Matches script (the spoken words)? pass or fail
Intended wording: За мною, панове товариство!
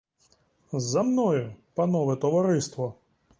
pass